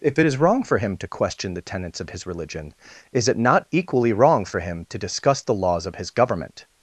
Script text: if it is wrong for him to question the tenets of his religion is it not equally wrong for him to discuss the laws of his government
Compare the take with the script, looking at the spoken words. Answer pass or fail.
pass